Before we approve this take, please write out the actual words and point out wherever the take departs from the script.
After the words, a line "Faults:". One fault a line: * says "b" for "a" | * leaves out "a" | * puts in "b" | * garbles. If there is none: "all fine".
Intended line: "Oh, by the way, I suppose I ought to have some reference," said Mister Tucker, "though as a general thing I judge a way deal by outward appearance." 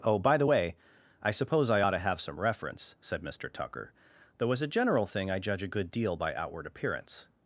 "Oh, by the way, I suppose I ought to have some reference," said Mister Tucker, "though as a general thing I judge a good deal by outward appearance."
Faults:
* says "good" for "way"